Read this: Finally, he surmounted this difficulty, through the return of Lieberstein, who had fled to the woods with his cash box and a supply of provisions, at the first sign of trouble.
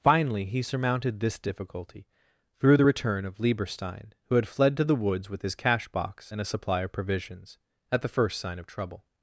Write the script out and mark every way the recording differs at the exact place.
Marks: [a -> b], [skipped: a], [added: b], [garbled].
Finally, he surmounted this difficulty, through the return of Lieberstein, who had fled to the woods with his cash box and a supply of provisions, at the first sign of trouble.